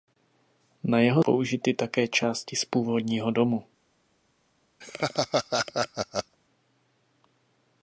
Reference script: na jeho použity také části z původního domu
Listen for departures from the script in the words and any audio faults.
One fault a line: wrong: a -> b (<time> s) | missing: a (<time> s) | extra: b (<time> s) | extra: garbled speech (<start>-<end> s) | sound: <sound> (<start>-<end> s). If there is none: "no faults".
sound: laugh (4.8-6.4 s)